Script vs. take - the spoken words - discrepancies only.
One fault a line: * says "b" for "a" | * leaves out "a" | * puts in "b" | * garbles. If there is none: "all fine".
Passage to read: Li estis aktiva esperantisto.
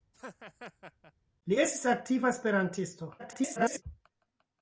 * garbles